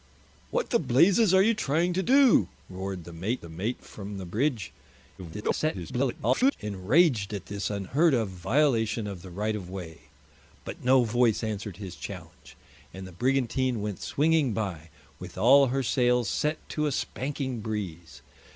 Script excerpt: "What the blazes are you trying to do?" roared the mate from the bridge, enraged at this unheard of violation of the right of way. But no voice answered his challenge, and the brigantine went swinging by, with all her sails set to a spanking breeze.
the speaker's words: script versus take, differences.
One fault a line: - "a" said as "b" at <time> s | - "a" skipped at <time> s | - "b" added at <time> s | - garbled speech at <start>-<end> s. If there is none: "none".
- "the mate" added at 3.4 s
- garbled speech at 5.2-6.6 s